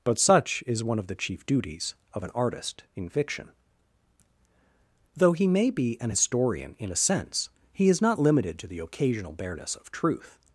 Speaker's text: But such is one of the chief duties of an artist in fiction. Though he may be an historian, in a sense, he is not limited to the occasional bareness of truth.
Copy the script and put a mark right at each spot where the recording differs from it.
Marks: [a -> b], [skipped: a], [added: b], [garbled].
But such is one of the chief duties of an artist in fiction. Though he may be an historian, in a sense, he is not limited to the occasional bareness of truth.